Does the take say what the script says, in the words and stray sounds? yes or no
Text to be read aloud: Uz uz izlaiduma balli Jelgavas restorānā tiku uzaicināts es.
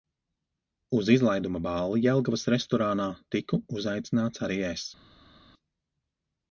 no